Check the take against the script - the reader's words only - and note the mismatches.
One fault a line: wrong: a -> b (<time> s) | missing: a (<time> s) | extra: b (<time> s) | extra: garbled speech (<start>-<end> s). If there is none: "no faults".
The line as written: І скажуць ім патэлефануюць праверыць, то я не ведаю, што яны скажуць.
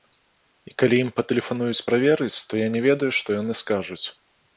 wrong: скажуць -> калі (0.8 s)